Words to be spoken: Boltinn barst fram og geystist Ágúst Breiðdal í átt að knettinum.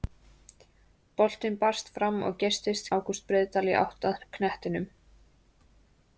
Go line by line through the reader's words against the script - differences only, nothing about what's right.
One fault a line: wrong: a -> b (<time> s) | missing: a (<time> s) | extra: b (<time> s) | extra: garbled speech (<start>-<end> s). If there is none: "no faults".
no faults